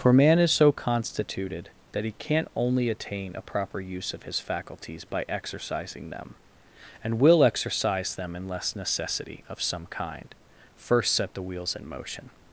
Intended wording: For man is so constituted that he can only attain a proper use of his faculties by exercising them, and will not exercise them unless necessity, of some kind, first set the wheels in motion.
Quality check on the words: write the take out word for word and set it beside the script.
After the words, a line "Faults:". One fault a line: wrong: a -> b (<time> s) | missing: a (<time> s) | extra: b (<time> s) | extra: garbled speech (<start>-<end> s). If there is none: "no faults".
For man is so constituted that he can't only attain a proper use of his faculties by exercising them, and will exercise them unless necessity, of some kind, first set the wheels in motion.
Faults:
wrong: can -> can't (2.2 s)
missing: not (7.4 s)